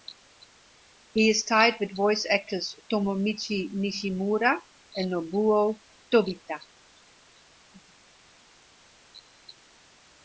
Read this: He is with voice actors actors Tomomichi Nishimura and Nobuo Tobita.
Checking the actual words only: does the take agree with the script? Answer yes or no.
no